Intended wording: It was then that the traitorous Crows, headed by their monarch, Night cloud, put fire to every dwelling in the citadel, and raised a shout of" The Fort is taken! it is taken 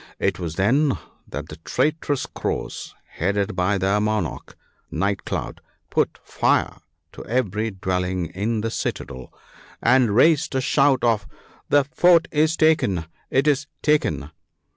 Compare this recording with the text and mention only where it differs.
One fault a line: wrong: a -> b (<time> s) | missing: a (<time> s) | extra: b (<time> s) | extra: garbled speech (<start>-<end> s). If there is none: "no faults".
no faults